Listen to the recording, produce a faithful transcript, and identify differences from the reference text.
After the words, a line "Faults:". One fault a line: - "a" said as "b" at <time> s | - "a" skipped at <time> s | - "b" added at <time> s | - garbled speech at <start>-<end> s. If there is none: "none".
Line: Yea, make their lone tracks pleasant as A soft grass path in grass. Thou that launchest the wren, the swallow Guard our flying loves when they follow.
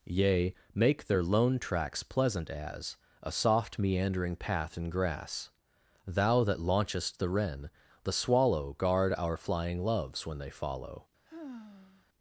Yea, make their lone tracks pleasant as A soft meandering path in grass. Thou that launchest the wren, the swallow Guard our flying loves when they follow.
Faults:
- "grass" said as "meandering" at 3.8 s